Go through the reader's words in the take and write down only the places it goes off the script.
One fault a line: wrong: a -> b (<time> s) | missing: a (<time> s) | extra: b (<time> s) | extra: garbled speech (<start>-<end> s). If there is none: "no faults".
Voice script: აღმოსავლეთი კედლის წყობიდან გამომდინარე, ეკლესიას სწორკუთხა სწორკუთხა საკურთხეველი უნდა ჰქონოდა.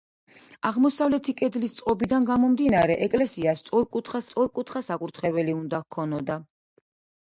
no faults